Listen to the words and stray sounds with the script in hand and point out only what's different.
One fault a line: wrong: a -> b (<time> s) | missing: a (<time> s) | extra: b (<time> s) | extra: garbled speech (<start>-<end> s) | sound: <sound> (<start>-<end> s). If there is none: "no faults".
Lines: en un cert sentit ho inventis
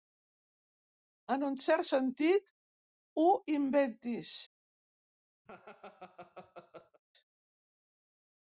sound: laugh (5.5-7.0 s)